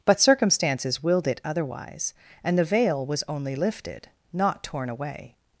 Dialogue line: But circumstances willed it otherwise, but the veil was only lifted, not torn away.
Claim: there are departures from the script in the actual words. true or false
true